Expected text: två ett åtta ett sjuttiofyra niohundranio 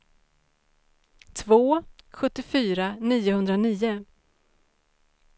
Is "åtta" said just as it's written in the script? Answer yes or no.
no